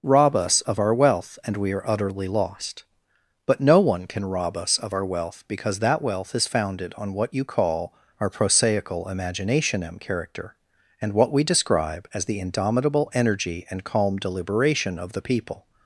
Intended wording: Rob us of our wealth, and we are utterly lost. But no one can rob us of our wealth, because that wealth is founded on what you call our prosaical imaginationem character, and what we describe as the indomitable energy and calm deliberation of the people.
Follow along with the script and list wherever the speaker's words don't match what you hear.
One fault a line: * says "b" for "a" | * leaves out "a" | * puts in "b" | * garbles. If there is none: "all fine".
all fine